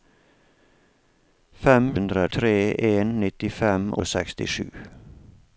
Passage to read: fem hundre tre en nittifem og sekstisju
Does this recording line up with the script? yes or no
yes